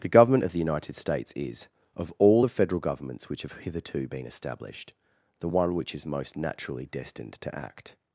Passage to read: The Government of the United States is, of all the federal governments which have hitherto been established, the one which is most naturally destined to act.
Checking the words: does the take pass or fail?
pass